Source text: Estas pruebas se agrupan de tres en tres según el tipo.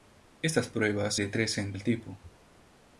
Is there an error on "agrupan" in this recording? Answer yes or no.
yes